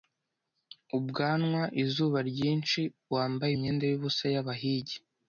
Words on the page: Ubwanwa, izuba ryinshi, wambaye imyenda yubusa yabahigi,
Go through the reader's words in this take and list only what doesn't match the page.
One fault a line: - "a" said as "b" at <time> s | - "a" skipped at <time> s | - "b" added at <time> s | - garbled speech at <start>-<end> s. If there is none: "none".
none